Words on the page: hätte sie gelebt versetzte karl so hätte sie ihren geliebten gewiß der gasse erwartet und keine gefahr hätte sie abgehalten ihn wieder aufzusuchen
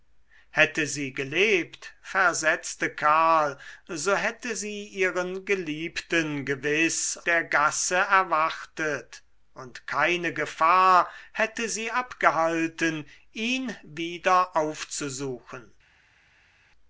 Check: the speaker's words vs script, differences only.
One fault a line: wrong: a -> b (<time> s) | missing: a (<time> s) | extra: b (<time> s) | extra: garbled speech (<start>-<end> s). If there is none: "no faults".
no faults